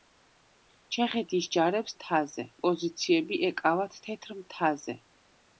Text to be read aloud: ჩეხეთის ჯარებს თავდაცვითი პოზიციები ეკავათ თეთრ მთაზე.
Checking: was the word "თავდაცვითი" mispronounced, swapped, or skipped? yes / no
yes